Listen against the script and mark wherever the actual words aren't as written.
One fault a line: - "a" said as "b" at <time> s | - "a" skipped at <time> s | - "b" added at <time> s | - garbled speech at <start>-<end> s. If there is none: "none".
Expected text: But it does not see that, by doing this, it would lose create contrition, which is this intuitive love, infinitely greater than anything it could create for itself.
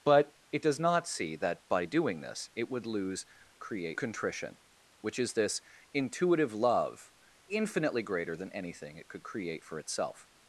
none